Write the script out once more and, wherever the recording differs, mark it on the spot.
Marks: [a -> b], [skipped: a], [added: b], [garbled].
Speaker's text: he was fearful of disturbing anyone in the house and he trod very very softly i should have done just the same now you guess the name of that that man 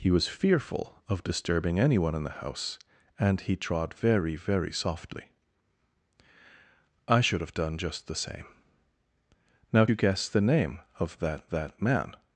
he was fearful of disturbing anyone in the house and he trod very very softly i should have done just the same now you guess the name of that that man